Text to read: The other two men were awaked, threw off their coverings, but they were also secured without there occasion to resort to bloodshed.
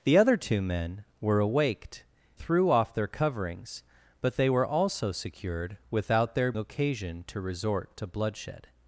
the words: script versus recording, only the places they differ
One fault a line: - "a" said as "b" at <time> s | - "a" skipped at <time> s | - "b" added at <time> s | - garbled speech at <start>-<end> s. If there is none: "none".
none